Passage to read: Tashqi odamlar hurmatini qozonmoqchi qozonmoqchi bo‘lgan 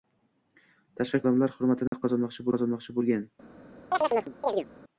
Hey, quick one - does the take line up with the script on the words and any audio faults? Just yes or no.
no